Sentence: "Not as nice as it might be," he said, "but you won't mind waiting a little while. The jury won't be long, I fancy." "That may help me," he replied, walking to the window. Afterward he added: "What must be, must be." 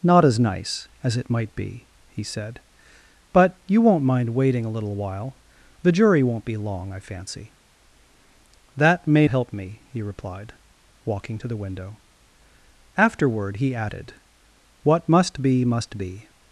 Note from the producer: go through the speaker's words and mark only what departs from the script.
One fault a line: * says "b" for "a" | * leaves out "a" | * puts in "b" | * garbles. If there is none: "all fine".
all fine